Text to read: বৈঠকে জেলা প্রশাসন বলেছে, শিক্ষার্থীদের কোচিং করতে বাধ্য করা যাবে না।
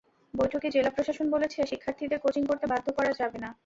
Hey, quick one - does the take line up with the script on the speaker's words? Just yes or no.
yes